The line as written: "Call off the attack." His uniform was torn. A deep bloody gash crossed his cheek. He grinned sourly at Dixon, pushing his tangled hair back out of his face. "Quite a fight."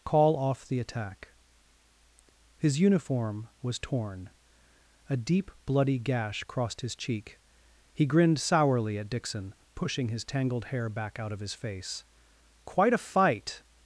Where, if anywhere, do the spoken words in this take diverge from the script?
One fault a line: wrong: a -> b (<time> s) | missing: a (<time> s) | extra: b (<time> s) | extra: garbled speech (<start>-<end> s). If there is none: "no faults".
no faults